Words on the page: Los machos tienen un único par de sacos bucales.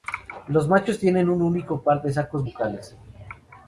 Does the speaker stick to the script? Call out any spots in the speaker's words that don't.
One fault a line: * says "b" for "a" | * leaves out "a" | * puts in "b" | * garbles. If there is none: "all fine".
all fine